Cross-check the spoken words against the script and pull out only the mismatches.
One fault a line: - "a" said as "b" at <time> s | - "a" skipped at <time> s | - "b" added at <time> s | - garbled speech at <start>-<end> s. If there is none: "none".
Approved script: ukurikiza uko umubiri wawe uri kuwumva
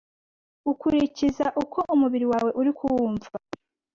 none